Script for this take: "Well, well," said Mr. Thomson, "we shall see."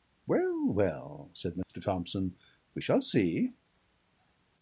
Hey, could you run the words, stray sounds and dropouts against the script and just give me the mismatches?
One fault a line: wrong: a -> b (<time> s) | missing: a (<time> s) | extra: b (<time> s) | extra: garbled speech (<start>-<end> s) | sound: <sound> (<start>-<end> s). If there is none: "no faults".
sound: dropout (1.6-1.7 s)